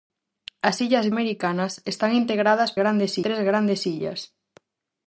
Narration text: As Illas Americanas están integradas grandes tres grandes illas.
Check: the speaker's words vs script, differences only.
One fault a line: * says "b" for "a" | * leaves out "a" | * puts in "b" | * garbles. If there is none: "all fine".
all fine